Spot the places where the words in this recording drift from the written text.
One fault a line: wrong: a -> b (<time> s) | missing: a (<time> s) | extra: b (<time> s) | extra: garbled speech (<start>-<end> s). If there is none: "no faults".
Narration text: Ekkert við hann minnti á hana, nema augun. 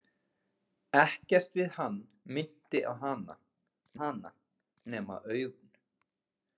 extra: hana (4.0 s)